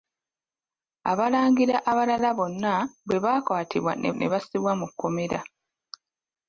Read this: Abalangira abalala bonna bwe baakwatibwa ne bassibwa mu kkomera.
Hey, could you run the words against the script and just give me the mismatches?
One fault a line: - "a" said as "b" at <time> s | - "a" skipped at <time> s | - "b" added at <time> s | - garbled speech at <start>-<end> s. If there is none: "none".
- "ne" added at 4.1 s